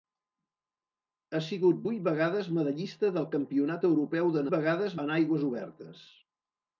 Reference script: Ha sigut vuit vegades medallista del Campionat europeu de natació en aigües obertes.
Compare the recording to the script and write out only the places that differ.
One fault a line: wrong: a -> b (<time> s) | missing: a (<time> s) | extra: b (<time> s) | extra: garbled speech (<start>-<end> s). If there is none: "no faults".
wrong: natació -> vegades (4.5 s)